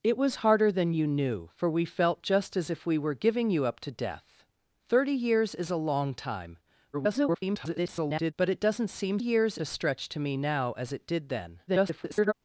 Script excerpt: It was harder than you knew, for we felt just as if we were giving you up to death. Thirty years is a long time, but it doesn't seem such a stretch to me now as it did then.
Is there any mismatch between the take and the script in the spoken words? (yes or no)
yes